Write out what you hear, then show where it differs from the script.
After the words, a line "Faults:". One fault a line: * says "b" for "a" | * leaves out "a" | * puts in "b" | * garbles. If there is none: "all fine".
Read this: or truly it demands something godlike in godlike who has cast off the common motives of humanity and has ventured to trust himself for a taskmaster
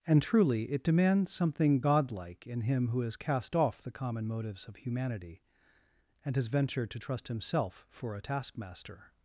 and truly it demands something godlike in him who has cast off the common motives of humanity and has ventured to trust himself for a taskmaster
Faults:
* says "and" for "or"
* says "him" for "godlike"